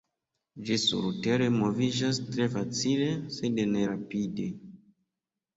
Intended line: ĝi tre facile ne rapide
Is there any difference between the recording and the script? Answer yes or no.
yes